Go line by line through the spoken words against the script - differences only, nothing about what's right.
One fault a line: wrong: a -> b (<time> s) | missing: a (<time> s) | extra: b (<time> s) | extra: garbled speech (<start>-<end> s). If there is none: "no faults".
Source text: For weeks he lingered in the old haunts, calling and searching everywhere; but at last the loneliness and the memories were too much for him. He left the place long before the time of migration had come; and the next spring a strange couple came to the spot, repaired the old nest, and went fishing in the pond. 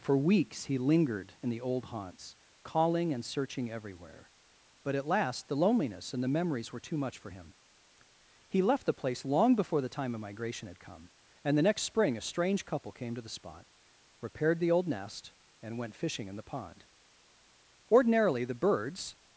extra: Ordinarily the birds (17.9 s)